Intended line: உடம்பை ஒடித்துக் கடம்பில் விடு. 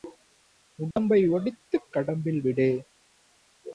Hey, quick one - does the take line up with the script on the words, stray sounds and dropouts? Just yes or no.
no